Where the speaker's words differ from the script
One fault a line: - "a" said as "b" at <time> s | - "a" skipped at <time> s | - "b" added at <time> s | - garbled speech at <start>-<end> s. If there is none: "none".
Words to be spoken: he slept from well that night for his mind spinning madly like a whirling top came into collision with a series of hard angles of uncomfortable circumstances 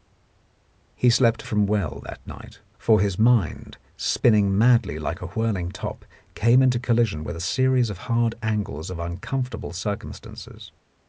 none